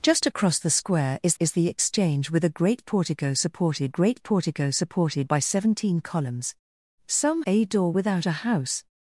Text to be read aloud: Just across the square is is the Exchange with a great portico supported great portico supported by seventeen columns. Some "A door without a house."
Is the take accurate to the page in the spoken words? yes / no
yes